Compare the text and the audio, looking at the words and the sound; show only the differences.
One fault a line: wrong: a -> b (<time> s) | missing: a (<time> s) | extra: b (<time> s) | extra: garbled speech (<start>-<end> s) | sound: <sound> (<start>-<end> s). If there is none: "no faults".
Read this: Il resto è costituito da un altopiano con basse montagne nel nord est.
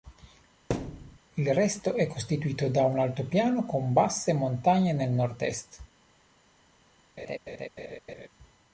sound: thud (0.7-1.2 s)
sound: laugh (7.2-8.3 s)